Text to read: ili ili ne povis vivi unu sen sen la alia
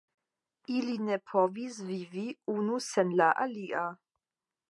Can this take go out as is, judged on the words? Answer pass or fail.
fail